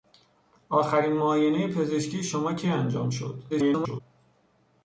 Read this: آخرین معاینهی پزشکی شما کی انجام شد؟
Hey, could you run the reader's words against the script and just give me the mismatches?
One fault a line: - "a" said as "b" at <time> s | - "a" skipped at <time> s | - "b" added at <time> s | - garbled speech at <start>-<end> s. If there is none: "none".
- garbled speech at 3.5-4.0 s